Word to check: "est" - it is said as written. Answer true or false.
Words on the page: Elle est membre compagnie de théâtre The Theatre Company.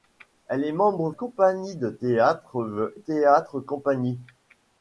true